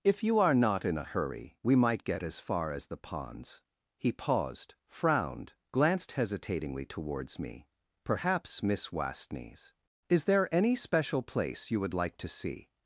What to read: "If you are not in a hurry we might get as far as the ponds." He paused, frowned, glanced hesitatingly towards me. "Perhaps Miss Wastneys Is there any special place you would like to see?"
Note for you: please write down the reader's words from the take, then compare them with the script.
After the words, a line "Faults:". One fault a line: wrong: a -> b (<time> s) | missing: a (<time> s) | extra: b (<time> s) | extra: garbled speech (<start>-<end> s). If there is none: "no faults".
"If you are not in a hurry we might get as far as the ponds." He paused, frowned, glanced hesitatingly towards me. "Perhaps Miss Wastneys Is there any special place you would like to see?"
Faults:
no faults